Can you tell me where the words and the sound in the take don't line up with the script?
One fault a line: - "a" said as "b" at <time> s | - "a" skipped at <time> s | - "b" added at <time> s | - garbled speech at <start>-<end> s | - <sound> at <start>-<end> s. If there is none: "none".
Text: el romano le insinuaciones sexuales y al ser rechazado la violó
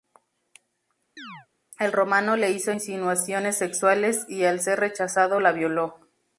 - chirp at 1.2-1.5 s
- "hizo" added at 2.5 s